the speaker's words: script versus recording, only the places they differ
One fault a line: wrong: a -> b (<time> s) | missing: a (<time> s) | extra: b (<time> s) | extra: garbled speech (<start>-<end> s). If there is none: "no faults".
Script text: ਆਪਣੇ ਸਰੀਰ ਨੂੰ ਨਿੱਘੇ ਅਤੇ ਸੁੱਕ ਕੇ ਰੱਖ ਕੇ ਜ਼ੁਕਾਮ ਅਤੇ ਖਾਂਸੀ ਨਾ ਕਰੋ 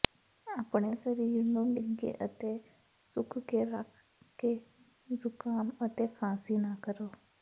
no faults